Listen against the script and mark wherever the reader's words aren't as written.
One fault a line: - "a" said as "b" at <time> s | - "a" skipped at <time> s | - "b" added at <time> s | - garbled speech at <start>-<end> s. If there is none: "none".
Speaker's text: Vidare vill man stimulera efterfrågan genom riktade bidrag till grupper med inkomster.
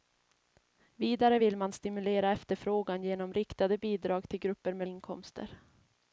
none